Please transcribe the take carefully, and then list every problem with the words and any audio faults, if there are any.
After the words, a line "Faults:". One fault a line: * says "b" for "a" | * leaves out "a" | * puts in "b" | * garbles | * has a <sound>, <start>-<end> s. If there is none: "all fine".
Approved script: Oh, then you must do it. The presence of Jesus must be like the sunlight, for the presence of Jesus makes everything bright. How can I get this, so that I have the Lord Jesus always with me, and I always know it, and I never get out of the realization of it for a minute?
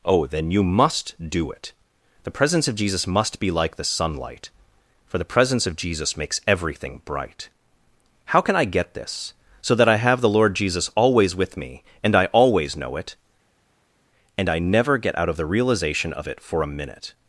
Oh, then you must do it. The presence of Jesus must be like the sunlight, for the presence of Jesus makes everything bright. How can I get this, so that I have the Lord Jesus always with me, and I always know it, and I never get out of the realization of it for a minute?
Faults:
all fine